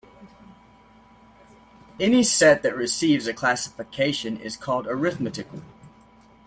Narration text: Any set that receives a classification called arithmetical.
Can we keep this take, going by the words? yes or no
no